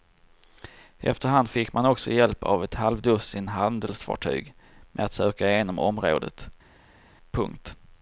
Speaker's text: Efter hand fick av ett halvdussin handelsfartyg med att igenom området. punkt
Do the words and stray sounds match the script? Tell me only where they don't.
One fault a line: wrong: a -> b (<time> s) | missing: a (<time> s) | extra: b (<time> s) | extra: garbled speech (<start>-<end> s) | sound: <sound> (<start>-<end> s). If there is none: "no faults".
extra: man också hjälp (1.7 s)
extra: söka (5.1 s)